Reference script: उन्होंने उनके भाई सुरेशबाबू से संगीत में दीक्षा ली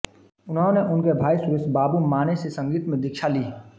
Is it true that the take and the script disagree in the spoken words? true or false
true